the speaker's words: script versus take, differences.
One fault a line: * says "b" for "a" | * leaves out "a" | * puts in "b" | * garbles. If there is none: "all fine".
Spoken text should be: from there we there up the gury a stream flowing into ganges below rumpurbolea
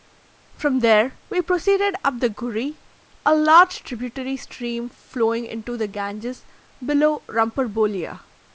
* says "proceeded" for "there"
* puts in "large tributary"
* puts in "the"